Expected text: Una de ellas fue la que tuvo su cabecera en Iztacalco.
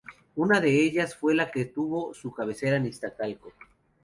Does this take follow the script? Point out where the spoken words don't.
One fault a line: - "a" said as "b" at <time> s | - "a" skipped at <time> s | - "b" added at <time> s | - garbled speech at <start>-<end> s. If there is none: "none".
none